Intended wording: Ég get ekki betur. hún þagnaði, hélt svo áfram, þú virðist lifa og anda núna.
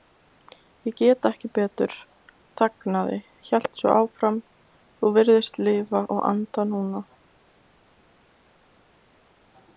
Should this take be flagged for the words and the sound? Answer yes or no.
yes